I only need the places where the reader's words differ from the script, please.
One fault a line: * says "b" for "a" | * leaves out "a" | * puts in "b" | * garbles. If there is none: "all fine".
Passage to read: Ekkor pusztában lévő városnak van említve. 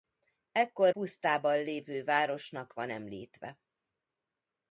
all fine